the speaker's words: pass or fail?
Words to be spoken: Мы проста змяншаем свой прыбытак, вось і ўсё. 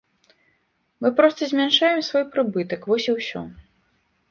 pass